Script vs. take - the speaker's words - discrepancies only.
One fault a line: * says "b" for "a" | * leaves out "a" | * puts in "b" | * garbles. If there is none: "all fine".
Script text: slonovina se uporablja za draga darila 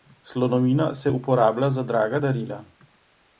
all fine